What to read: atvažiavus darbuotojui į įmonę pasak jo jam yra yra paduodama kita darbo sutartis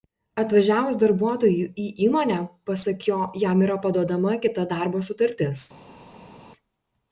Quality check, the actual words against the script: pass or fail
fail